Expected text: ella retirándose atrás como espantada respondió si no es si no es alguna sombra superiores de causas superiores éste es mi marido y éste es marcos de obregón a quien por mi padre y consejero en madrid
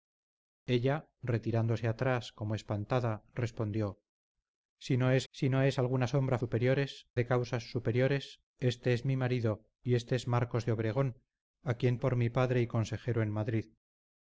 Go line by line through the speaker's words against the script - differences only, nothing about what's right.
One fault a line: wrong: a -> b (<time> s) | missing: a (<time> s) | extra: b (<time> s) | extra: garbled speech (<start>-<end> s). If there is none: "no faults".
no faults